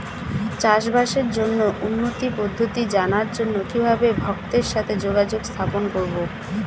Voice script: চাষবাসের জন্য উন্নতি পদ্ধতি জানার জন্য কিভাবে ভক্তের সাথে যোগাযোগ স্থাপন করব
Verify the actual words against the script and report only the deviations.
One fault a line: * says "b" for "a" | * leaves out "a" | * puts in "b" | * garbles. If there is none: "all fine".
all fine